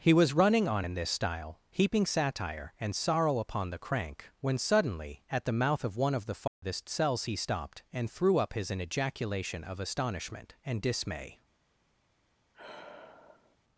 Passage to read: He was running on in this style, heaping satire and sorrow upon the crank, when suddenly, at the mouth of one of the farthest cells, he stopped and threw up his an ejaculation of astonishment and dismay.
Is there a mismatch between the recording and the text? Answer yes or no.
no